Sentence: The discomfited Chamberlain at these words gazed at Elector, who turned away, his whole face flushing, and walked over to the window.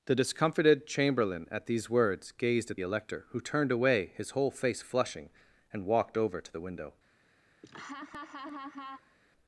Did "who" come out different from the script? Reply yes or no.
no